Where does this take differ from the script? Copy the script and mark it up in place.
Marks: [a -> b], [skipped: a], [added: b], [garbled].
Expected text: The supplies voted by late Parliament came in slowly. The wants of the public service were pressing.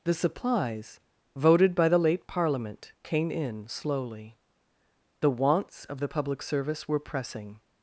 The supplies voted by [added: the] late Parliament came in slowly. The wants of the public service were pressing.